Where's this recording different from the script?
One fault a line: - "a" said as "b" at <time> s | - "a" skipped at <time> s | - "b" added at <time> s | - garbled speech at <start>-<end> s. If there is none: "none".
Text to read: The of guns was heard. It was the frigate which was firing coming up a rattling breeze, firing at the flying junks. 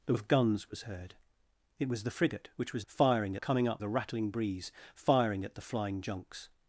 none